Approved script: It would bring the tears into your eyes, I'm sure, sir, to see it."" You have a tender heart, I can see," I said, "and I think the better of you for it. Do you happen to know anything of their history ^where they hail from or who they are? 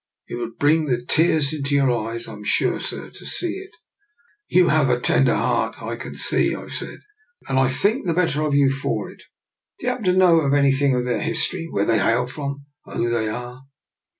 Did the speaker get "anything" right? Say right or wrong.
right